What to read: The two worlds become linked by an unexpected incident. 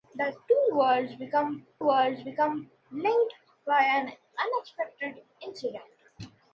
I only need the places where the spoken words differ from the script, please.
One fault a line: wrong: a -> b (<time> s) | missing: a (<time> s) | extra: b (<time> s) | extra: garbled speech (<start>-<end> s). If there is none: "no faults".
extra: worlds become (1.8 s)